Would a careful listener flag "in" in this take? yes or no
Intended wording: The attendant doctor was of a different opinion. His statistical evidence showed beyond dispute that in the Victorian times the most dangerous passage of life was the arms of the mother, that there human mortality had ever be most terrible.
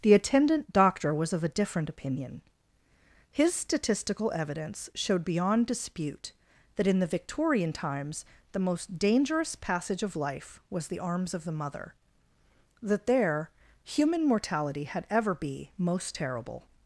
no